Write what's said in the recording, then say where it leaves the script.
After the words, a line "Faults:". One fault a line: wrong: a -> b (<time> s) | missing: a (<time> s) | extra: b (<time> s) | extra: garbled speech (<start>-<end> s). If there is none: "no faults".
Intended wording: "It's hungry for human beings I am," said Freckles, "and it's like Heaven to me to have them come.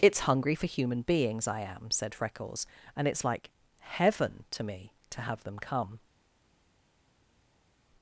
"It's hungry for human beings I am," said Freckles, "and it's like Heaven to me to have them come.
Faults:
no faults